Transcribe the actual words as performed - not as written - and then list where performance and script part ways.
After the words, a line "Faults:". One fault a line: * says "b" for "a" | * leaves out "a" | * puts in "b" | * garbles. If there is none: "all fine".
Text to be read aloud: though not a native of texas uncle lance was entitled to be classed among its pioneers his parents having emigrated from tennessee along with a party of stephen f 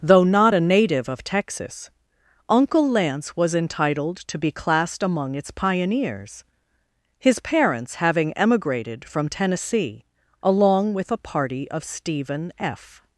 though not a native of texas uncle lance was entitled to be classed among its pioneers his parents having emigrated from tennessee along with a party of stephen f
Faults:
all fine